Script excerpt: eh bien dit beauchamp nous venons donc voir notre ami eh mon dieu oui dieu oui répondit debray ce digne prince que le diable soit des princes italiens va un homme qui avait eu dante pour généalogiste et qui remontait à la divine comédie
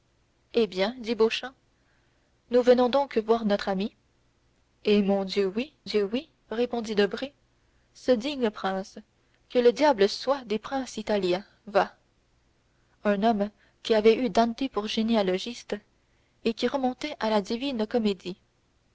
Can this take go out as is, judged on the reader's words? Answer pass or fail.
pass